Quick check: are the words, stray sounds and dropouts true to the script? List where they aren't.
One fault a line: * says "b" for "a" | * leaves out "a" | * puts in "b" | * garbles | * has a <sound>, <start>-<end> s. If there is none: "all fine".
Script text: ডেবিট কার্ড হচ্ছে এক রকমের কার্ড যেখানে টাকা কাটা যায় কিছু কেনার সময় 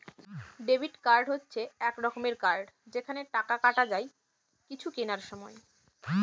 all fine